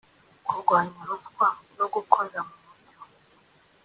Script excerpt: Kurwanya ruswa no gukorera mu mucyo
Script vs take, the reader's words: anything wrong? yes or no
no